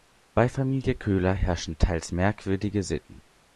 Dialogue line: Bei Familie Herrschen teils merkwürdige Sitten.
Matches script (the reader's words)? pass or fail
fail